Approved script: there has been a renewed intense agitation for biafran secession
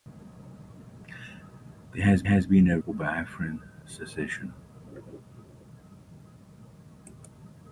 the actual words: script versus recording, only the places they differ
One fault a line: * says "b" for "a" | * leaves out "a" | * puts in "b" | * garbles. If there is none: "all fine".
* puts in "has"
* leaves out "renewed intense agitation"